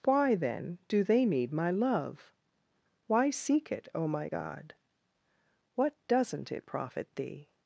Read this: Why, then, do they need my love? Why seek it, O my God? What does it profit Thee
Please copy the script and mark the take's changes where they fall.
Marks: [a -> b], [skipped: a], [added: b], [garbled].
Why, then, do they need my love? Why seek it, O my God? What [does -> doesn't] it profit Thee